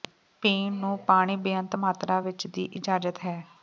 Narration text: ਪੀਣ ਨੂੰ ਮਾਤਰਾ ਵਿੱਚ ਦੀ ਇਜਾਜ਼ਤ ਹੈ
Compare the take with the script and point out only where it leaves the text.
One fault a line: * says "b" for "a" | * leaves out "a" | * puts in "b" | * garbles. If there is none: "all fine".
* puts in "ਪਾਣੀ ਬੇਅੰਤ"